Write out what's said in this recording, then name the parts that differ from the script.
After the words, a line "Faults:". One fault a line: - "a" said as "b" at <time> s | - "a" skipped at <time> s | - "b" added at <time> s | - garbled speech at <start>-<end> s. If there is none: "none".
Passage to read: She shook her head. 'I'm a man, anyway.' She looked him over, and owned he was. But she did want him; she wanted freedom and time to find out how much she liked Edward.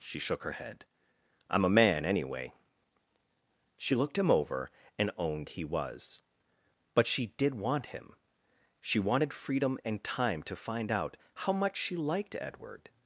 She shook her head. 'I'm a man, anyway.' She looked him over, and owned he was. But she did want him; she wanted freedom and time to find out how much she liked Edward.
Faults:
none